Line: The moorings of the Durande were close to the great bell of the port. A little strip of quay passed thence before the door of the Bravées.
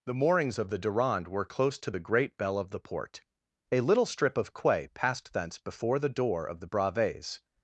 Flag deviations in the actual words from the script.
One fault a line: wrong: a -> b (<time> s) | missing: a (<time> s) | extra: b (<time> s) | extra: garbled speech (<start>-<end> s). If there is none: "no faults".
no faults